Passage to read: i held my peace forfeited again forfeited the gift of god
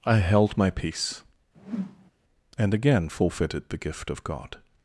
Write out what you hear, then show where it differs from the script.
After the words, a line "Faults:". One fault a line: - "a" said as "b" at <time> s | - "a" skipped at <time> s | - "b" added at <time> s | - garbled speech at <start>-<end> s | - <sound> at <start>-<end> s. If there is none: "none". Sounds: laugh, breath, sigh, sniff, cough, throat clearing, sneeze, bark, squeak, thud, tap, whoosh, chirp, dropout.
i held my peace and again forfeited the gift of god
Faults:
- whoosh at 1.5-2.1 s
- "forfeited" said as "and" at 2.6 s